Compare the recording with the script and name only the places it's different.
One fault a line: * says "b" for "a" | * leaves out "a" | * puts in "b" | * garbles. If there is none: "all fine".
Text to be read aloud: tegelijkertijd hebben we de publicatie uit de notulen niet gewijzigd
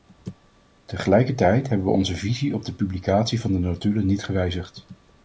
* puts in "onze visie op"
* says "van" for "uit"